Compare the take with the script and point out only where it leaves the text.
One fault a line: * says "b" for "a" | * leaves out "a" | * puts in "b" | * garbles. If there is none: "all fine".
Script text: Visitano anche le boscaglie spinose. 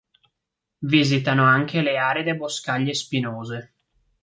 * puts in "aride"